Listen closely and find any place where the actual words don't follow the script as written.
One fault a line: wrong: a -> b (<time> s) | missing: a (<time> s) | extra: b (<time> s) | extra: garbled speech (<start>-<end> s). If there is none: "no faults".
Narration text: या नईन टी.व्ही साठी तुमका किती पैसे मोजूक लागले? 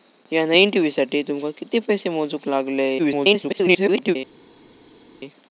extra: garbled speech (3.0-4.2 s)